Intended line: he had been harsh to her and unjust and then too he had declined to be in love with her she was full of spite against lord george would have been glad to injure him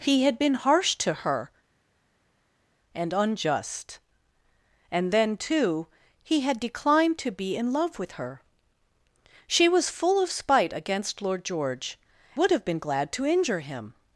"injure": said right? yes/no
yes